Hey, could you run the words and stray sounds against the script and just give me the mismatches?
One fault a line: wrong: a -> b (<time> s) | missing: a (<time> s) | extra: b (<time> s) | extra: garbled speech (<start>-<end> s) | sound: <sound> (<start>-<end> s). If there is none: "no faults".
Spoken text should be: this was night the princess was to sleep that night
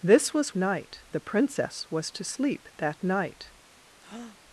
sound: breath (4.0-4.4 s)